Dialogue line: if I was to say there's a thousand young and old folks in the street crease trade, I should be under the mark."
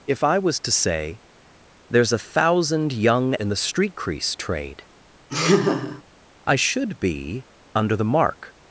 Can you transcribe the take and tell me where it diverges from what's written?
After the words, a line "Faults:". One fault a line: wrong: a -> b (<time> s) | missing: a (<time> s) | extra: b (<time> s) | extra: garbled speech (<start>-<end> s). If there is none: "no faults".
if I was to say there's a thousand young in the street crease trade, I should be under the mark."
Faults:
missing: and old folks (3.4 s)